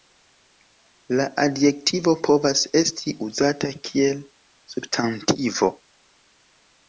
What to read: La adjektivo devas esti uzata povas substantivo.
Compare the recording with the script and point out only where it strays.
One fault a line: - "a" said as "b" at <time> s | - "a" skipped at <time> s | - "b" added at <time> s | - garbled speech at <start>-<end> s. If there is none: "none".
- "devas" said as "povas" at 2.3 s
- "povas" said as "kiel" at 3.9 s